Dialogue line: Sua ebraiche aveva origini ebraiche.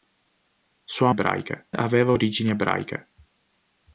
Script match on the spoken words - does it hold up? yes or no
yes